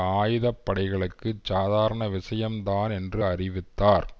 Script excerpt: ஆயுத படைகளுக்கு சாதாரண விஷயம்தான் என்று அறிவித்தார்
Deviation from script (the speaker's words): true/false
false